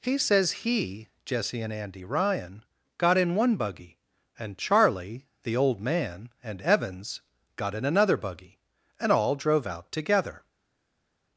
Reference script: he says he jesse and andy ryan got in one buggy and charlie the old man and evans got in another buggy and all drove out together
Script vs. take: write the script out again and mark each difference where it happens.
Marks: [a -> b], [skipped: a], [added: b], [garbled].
he says he jesse and andy ryan got in one buggy and charlie the old man and evans got in another buggy and all drove out together